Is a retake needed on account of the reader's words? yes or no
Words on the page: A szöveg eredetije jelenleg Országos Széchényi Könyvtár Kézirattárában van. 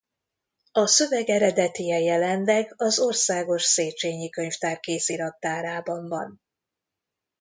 yes